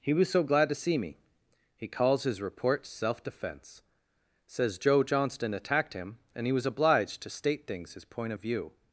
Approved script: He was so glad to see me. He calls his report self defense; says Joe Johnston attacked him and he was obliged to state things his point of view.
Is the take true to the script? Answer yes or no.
yes